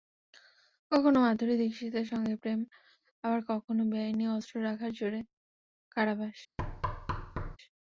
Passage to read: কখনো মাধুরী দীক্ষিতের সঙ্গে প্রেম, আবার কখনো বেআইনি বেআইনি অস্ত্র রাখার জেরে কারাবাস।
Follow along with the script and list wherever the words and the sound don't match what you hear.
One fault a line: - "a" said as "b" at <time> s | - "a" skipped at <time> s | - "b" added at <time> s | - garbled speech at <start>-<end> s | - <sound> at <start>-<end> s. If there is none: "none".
- "বেআইনি" skipped at 4.3 s
- thud at 6.6-7.6 s